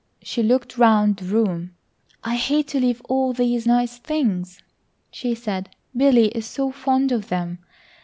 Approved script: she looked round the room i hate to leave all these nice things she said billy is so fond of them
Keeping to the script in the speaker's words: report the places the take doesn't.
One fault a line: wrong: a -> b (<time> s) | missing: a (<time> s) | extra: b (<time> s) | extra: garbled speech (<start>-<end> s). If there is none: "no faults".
no faults